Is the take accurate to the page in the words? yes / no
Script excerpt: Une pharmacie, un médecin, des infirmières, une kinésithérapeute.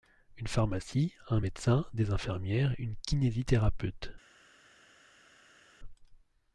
yes